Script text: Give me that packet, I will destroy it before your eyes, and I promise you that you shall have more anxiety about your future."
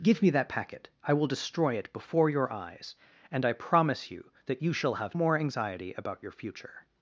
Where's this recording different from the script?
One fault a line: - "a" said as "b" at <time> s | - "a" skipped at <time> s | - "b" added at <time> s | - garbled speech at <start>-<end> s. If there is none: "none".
none